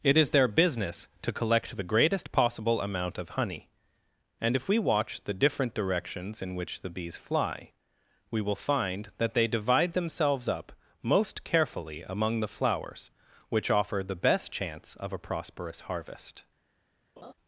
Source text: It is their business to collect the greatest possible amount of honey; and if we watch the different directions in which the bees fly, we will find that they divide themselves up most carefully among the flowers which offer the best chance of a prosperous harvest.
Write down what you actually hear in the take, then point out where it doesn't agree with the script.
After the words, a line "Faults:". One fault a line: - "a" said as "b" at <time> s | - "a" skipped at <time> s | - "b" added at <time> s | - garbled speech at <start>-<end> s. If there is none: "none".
It is their business to collect the greatest possible amount of honey; and if we watch the different directions in which the bees fly, we will find that they divide themselves up most carefully among the flowers which offer the best chance of a prosperous harvest.
Faults:
none